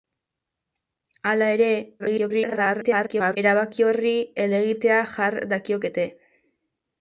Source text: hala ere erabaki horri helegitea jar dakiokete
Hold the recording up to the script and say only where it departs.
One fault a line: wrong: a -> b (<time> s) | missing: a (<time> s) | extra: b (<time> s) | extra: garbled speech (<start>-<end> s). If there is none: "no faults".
extra: garbled speech (2.0-3.4 s)